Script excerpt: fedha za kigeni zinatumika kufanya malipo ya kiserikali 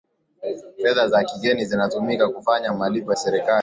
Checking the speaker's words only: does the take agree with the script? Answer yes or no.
no